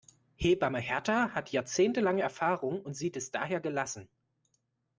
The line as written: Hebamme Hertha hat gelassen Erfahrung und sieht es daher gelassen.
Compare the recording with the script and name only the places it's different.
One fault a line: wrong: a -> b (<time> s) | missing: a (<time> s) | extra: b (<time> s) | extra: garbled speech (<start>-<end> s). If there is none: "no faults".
wrong: gelassen -> jahrzehntelange (1.5 s)